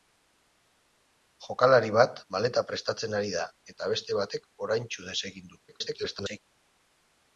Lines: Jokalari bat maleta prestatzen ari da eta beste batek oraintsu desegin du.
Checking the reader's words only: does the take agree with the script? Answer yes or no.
no